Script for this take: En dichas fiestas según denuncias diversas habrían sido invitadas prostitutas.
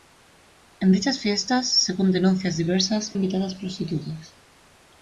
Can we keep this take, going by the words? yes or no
no